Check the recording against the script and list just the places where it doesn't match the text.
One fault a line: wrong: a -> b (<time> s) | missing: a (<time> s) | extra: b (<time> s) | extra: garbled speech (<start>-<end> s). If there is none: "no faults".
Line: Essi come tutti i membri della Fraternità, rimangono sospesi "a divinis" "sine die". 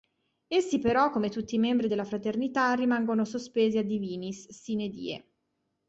extra: però (0.8 s)